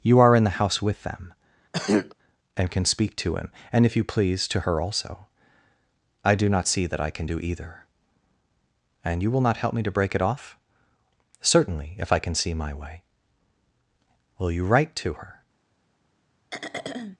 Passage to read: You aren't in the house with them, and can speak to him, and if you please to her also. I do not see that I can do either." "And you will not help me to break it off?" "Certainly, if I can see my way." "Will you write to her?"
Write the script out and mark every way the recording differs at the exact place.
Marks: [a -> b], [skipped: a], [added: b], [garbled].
You [aren't -> are] in the house with them, and can speak to him, and if you please to her also. I do not see that I can do either." "And you will not help me to break it off?" "Certainly, if I can see my way." "Will you write to her?"